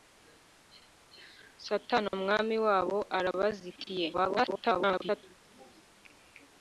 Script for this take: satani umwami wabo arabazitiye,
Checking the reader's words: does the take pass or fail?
fail